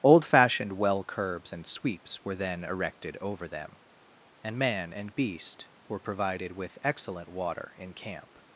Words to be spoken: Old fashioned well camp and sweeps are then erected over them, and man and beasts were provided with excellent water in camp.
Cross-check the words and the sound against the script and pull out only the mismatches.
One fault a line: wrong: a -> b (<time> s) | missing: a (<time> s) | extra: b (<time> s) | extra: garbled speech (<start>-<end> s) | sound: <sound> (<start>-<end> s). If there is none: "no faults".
wrong: camp -> curbs (1.0 s)
wrong: are -> were (2.2 s)
wrong: beasts -> beast (5.1 s)